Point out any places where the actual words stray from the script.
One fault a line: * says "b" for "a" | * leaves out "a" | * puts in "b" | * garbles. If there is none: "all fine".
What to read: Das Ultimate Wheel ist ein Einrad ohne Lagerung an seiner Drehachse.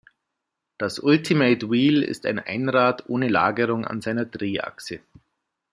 all fine